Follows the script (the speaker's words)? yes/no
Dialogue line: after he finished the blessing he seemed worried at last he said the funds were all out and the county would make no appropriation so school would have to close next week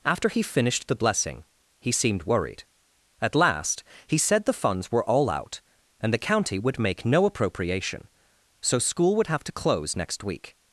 yes